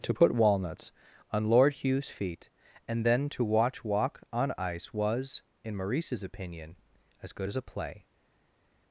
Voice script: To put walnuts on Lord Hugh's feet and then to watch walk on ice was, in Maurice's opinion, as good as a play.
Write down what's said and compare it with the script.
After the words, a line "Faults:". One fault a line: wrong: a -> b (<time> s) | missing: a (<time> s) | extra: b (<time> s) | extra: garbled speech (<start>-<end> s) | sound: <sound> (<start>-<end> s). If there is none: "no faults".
To put walnuts on Lord Hugh's feet and then to watch walk on ice was, in Maurice's opinion, as good as a play.
Faults:
no faults